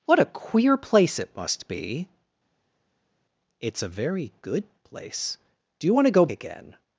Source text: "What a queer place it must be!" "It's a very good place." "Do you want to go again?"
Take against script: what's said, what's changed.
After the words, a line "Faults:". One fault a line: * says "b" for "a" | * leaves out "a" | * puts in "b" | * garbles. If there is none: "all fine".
"What a queer place it must be!" "It's a very good place." "Do you want to go again?"
Faults:
all fine